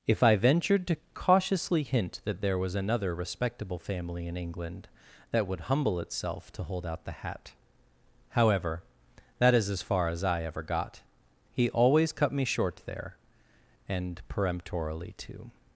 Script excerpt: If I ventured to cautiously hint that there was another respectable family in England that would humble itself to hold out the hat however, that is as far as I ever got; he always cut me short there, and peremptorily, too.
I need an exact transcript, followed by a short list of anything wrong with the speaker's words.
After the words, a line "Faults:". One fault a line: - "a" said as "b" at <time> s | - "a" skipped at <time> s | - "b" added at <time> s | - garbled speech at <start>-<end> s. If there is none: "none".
If I ventured to cautiously hint that there was another respectable family in England that would humble itself to hold out the hat however, that is as far as I ever got; he always cut me short there, and peremptorily, too.
Faults:
none